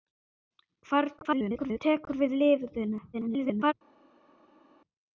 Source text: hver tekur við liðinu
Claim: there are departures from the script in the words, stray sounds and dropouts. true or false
true